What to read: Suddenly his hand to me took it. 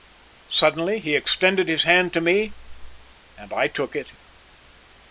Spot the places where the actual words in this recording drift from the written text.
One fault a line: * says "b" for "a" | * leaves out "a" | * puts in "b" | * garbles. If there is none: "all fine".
* puts in "he extended"
* puts in "and I"